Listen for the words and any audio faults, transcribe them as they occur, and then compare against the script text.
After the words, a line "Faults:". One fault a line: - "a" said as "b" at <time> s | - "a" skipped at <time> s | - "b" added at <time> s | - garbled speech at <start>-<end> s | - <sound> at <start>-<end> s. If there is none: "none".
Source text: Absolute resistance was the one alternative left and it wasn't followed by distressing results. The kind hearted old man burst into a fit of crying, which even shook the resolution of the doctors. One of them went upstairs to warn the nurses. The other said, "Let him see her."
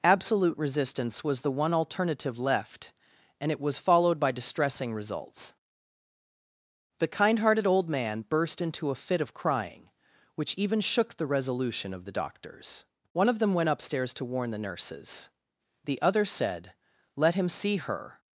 Absolute resistance was the one alternative left and it was followed by distressing results. The kind hearted old man burst into a fit of crying, which even shook the resolution of the doctors. One of them went upstairs to warn the nurses. The other said, "Let him see her."
Faults:
- "wasn't" said as "was" at 3.6 s